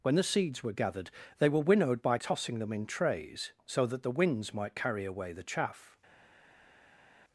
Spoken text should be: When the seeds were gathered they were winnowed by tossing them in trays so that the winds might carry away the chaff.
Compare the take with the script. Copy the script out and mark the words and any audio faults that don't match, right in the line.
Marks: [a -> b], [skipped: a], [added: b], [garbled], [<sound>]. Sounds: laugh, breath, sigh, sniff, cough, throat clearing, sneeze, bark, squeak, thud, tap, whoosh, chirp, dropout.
When the seeds were gathered they were winnowed by tossing them in trays so that the winds might carry away the chaff.